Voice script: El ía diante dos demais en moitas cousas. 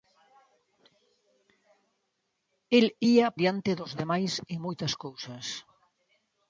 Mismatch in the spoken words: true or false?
false